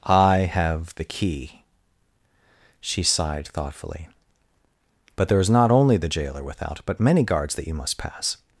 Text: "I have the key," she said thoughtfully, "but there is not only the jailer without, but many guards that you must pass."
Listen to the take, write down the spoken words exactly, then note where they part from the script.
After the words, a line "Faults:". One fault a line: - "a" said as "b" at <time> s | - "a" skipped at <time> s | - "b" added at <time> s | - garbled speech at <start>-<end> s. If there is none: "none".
"I have the key," she sighed thoughtfully, "but there is not only the jailer without, but many guards that you must pass."
Faults:
- "said" said as "sighed" at 3.0 s